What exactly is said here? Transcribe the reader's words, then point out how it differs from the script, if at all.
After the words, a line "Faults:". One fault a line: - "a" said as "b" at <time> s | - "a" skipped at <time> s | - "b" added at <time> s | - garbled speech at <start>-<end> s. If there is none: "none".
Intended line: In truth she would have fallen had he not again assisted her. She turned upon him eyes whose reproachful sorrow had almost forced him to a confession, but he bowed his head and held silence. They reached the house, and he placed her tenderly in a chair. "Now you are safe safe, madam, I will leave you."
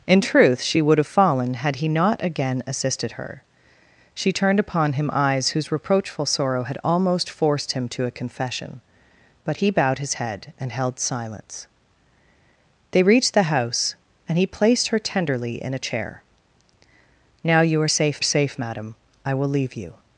In truth she would have fallen had he not again assisted her. She turned upon him eyes whose reproachful sorrow had almost forced him to a confession, but he bowed his head and held silence. They reached the house, and he placed her tenderly in a chair. "Now you are safe safe, madam, I will leave you."
Faults:
none